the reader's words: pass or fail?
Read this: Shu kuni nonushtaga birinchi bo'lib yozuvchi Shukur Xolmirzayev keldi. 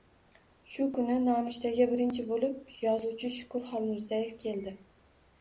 pass